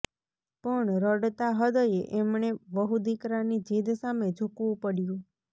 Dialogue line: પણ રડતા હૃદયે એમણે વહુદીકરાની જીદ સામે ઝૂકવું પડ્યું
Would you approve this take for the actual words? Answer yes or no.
yes